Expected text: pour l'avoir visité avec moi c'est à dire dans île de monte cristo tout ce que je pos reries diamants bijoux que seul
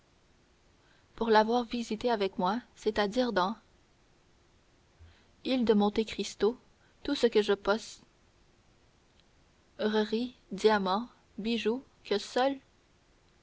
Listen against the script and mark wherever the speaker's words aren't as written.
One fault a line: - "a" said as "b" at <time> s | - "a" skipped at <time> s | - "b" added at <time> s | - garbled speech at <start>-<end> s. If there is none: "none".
none